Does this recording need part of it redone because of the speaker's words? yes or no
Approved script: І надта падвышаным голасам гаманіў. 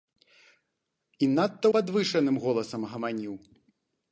no